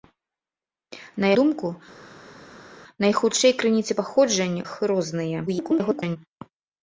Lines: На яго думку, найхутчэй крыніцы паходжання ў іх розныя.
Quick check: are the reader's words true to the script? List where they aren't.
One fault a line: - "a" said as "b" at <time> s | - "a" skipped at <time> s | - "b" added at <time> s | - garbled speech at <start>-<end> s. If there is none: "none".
- "яго" skipped at 1.3 s
- "ў" skipped at 4.6 s
- garbled speech at 5.5-6.2 s